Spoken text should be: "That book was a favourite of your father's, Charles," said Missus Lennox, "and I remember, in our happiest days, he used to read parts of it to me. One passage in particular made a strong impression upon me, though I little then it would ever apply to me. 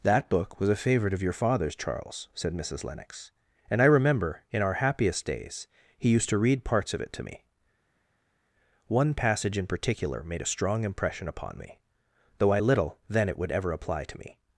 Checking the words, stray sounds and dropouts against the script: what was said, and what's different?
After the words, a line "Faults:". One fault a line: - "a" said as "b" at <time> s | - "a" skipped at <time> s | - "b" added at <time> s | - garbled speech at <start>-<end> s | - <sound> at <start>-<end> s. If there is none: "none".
"That book was a favourite of your father's, Charles," said Missus Lennox, "and I remember, in our happiest days, he used to read parts of it to me. One passage in particular made a strong impression upon me, though I little then it would ever apply to me.
Faults:
none